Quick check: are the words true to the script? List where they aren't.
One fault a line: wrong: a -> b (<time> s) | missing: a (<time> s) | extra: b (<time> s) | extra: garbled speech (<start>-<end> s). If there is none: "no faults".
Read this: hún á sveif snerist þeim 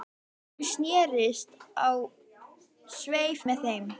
extra: snerist (0.7 s)
wrong: snerist -> með (3.5 s)